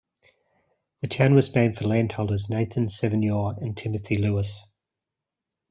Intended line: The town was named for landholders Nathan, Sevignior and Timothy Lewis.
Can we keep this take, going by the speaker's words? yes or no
yes